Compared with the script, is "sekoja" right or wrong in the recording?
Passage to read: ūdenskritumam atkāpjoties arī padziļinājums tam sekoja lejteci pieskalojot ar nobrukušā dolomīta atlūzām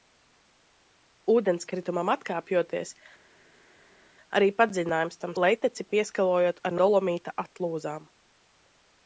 wrong